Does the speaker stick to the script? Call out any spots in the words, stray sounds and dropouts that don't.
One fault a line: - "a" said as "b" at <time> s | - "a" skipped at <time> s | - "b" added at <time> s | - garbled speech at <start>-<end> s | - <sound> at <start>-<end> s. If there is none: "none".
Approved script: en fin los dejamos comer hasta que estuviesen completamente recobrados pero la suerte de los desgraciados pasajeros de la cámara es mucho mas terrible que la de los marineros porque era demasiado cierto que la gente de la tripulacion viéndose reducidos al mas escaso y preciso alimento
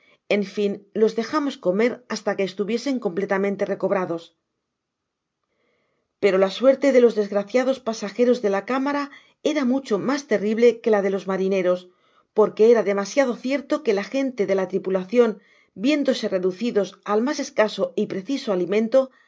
- "es" said as "era" at 9.4 s